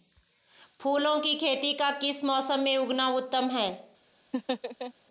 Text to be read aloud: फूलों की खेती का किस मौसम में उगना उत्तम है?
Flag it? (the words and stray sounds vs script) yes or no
yes